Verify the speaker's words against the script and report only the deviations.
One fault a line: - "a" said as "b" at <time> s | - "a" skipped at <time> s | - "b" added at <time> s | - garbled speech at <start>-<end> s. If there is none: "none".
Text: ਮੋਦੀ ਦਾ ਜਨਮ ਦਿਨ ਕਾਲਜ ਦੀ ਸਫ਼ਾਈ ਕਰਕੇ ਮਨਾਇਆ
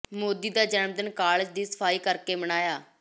none